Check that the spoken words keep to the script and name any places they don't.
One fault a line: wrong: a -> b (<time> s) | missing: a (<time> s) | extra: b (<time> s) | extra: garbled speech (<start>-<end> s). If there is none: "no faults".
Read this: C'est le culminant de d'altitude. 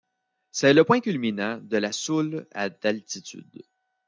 extra: point (0.8 s)
extra: la Soule à (1.8 s)